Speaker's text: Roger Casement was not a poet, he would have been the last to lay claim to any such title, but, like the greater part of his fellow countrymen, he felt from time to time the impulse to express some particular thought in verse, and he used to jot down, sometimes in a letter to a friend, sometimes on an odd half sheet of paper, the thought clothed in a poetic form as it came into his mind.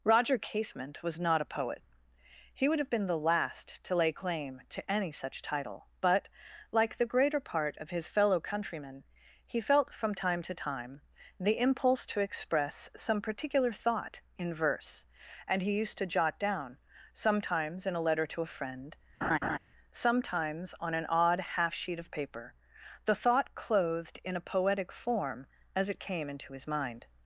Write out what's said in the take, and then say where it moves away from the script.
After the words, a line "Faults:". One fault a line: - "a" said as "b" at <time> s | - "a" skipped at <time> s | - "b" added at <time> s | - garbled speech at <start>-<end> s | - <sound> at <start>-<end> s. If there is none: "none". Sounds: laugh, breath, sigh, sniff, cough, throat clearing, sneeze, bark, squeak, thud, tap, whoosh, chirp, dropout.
Roger Casement was not a poet, he would have been the last to lay claim to any such title, but, like the greater part of his fellow countrymen, he felt from time to time the impulse to express some particular thought in verse, and he used to jot down, sometimes in a letter to a friend, sometimes on an odd half sheet of paper, the thought clothed in a poetic form as it came into his mind.
Faults:
- laugh at 19.2-19.6 s